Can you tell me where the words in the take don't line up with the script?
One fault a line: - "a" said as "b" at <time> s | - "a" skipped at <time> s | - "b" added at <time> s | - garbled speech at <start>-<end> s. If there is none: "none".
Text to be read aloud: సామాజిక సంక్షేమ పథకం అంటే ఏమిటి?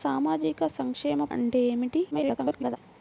- "పథకం" skipped at 1.2 s
- garbled speech at 2.1-2.8 s